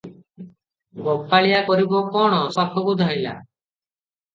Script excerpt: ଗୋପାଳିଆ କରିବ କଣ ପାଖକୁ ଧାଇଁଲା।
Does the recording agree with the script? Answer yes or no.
yes